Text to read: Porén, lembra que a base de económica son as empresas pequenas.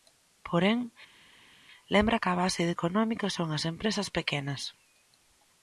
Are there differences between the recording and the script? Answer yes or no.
no